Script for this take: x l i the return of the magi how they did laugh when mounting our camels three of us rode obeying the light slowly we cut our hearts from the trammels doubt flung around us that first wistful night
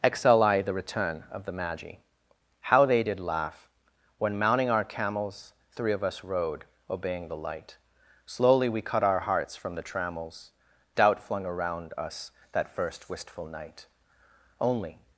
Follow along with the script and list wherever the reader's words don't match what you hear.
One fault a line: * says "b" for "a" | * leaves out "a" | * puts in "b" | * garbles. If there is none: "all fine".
* puts in "only"